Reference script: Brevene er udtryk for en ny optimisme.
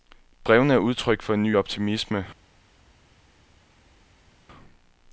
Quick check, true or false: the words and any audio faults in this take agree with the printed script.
true